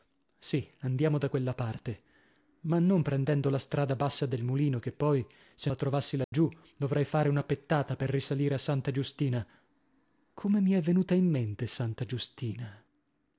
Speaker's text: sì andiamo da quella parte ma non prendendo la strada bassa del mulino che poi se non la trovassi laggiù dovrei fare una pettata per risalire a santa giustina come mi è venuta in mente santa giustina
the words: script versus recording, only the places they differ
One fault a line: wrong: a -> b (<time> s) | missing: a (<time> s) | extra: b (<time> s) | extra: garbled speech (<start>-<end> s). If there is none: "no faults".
missing: non (5.7 s)